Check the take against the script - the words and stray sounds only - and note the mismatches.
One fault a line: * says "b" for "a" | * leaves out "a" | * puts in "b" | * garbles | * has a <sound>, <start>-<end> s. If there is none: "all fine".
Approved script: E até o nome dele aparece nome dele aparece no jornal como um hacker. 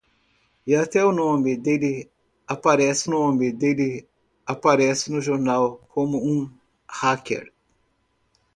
all fine